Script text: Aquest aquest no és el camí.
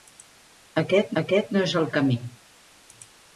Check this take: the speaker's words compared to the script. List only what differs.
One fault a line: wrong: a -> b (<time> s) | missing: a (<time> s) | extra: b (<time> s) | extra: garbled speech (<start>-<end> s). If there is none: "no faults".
no faults